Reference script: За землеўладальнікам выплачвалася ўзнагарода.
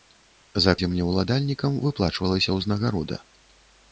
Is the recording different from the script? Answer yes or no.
no